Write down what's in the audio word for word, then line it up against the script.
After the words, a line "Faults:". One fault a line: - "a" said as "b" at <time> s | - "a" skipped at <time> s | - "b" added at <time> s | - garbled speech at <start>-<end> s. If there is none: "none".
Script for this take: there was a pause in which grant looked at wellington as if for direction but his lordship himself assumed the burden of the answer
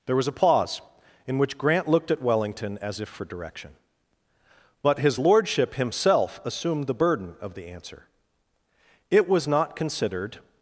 there was a pause in which grant looked at wellington as if for direction but his lordship himself assumed the burden of the answer it was not considered
Faults:
- "it was not considered" added at 9.1 s